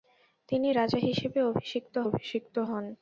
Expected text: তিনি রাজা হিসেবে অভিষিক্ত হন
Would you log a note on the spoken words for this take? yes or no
yes